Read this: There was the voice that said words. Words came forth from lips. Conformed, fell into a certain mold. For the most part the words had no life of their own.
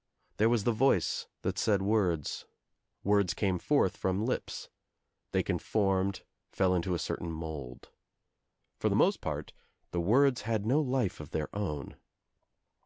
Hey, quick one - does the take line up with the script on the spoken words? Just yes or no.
no